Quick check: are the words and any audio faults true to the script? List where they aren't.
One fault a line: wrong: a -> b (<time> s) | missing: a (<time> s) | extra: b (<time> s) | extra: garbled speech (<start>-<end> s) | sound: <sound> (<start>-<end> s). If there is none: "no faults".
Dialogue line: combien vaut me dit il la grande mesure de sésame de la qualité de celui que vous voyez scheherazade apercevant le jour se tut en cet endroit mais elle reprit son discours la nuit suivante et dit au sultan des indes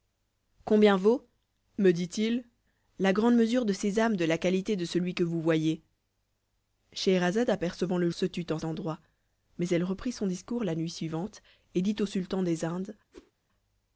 missing: jour (8.1 s)
missing: cet (8.6 s)
sound: whoosh (13.1-13.3 s)